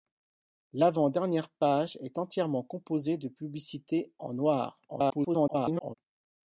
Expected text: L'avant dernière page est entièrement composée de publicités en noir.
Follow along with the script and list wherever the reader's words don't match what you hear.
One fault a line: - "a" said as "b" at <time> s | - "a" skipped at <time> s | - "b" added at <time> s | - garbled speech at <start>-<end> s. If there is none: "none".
- garbled speech at 4.9-5.9 s